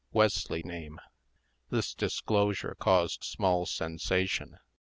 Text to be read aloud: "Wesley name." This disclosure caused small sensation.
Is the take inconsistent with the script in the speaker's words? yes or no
no